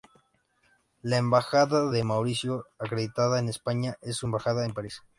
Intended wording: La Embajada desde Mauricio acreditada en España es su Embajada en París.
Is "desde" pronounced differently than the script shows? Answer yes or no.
yes